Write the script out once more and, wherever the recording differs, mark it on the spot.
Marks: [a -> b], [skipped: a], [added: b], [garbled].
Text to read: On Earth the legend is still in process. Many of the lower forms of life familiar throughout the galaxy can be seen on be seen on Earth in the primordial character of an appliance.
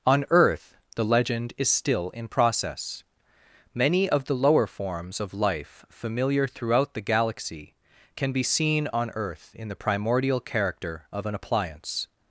On Earth the legend is still in process. Many of the lower forms of life familiar throughout the galaxy can be seen on [skipped: be seen on] Earth in the primordial character of an appliance.